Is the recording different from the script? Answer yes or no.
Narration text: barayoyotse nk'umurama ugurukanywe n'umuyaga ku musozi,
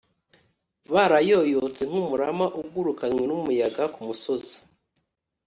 no